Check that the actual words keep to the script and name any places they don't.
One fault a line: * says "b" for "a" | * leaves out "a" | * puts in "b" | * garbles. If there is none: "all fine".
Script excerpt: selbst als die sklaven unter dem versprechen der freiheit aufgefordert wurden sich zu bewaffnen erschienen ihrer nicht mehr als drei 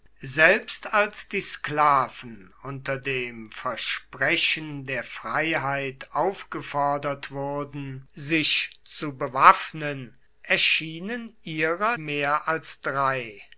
* leaves out "nicht"